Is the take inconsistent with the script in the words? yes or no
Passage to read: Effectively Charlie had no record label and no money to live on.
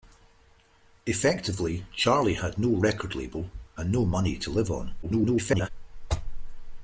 yes